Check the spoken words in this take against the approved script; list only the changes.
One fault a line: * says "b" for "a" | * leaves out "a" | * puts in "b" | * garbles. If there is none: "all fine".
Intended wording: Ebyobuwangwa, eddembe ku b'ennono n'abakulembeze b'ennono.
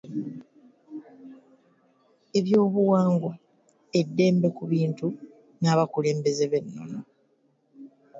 * says "bintu" for "b'ennono"